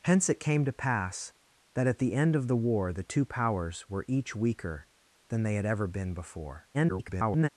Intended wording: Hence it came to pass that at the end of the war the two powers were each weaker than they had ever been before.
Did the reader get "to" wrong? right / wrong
right